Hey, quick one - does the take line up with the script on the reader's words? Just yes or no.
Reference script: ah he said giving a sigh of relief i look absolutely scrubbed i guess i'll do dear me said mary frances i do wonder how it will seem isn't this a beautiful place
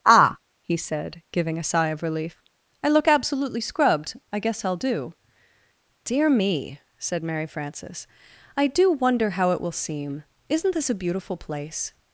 yes